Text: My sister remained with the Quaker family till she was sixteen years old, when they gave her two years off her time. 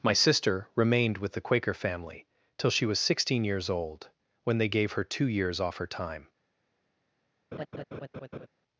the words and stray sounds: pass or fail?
fail